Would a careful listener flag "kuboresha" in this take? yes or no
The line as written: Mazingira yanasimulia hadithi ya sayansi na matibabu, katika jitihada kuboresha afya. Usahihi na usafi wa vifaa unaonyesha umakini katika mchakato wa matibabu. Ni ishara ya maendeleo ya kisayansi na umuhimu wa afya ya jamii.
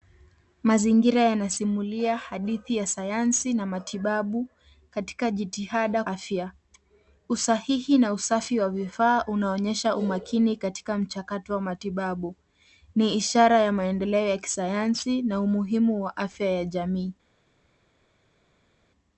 yes